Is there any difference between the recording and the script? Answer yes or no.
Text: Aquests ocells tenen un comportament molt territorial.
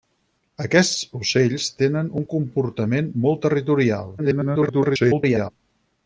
yes